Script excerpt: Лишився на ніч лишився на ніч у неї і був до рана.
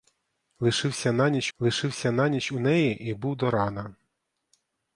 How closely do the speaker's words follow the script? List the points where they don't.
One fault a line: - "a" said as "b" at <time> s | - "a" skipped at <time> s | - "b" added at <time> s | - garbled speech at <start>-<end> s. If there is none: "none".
none